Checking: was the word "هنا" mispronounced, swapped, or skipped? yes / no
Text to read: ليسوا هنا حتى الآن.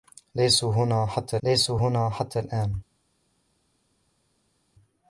no